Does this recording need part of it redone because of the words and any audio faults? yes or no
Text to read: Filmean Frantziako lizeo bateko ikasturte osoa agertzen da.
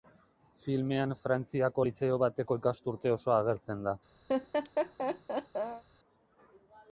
yes